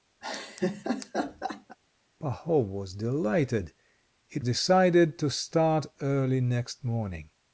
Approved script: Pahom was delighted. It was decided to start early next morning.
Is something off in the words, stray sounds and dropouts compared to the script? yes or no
yes